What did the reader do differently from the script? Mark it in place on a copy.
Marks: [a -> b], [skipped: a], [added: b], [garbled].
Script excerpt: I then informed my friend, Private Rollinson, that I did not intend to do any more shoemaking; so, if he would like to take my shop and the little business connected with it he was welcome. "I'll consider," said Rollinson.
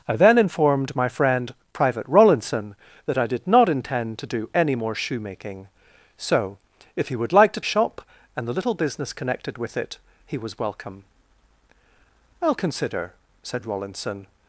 I then informed my friend, Private Rollinson, that I did not intend to do any more shoemaking; so, if he would like to [skipped: take my] shop and the little business connected with it he was welcome. "I'll consider," said Rollinson.